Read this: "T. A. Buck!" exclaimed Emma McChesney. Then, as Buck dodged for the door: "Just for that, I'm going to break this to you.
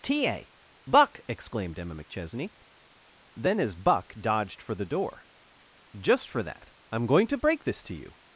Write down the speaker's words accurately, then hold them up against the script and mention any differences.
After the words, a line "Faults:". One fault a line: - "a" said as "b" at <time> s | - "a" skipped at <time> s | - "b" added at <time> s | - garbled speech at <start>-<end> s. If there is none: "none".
"T. A. Buck!" exclaimed Emma McChesney. Then, as Buck dodged for the door: "Just for that, I'm going to break this to you.
Faults:
none